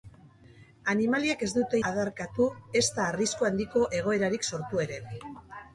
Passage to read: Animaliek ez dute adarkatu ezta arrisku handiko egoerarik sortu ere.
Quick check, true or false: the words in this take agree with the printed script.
true